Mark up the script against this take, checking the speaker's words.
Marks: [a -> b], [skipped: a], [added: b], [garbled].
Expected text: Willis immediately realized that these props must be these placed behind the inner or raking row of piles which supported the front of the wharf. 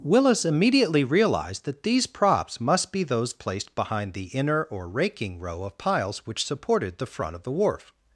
Willis immediately realized that these props must be [these -> those] placed behind the inner or raking row of piles which supported the front of the wharf.